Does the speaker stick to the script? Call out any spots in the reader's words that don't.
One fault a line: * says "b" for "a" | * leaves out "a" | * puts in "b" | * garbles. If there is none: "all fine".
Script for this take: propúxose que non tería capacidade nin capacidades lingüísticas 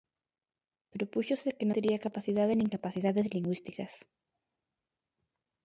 * leaves out "non"